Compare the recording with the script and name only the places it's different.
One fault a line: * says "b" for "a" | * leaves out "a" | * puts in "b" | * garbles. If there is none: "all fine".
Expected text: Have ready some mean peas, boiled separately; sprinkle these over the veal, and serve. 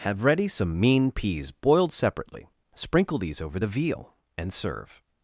all fine